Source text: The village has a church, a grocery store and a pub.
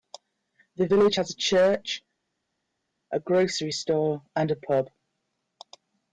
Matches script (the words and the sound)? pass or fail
pass